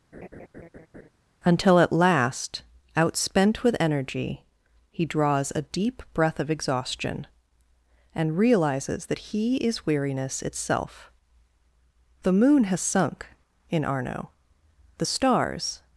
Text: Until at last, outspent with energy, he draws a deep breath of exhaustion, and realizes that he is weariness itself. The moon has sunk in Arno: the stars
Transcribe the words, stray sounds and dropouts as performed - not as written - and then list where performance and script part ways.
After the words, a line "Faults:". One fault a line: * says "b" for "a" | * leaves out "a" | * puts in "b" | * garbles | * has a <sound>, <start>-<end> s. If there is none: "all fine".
Until at last, outspent with energy, he draws a deep breath of exhaustion, and realizes that he is weariness itself. The moon has sunk in Arno: the stars
Faults:
* has a laugh, 0.1-1.1 s